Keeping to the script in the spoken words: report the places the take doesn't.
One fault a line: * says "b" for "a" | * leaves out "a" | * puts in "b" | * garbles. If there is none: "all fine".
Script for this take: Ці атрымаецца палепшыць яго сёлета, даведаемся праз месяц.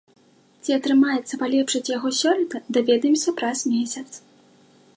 all fine